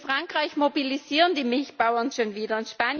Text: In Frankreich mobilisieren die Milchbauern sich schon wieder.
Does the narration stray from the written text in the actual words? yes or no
yes